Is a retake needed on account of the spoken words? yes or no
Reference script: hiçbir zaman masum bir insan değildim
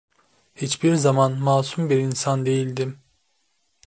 no